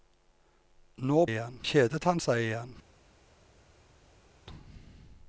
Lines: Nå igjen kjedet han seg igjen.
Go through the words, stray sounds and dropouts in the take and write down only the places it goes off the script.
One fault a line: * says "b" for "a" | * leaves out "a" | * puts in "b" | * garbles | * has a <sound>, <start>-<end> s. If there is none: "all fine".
all fine